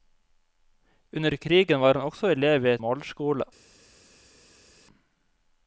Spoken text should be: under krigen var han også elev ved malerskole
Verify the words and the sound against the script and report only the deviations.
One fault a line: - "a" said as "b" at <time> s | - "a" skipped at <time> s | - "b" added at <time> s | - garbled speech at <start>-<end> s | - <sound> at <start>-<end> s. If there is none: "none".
none